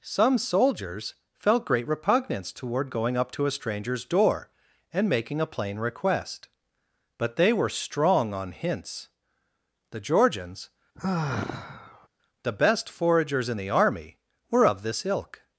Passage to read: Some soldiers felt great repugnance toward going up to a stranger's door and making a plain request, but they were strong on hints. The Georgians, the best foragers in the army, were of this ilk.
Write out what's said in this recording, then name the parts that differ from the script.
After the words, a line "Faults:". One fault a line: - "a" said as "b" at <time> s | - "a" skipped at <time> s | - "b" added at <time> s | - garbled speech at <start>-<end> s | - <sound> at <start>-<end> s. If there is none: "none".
Some soldiers felt great repugnance toward going up to a stranger's door and making a plain request, but they were strong on hints. The Georgians, the best foragers in the army, were of this ilk.
Faults:
- sigh at 10.9-12.1 s